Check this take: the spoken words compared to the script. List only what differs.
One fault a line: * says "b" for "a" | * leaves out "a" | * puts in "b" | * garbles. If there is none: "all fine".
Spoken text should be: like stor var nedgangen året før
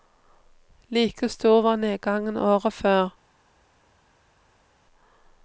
all fine